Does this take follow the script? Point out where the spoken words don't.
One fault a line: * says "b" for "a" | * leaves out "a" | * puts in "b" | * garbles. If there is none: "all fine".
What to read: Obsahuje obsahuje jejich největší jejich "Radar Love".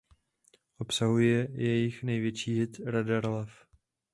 * leaves out "obsahuje"
* says "hit" for "jejich"